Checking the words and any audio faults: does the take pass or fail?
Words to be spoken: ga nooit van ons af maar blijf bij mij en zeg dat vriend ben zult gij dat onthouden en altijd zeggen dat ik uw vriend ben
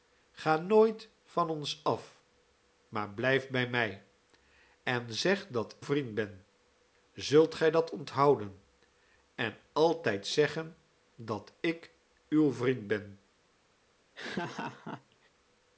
fail